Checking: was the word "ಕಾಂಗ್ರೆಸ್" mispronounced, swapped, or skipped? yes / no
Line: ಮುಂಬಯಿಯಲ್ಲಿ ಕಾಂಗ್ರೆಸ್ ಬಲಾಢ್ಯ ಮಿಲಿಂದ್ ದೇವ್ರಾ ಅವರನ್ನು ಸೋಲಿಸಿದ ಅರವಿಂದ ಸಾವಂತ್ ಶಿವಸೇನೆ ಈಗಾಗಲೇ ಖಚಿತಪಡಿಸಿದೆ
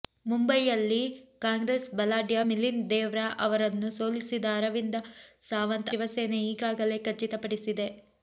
no